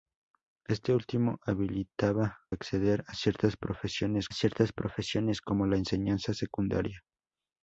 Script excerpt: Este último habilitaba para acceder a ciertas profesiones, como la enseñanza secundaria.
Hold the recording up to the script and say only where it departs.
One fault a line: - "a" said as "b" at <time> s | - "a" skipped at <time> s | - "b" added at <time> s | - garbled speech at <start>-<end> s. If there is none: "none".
- "para" skipped at 2.4 s
- "ciertas profesiones" added at 4.3 s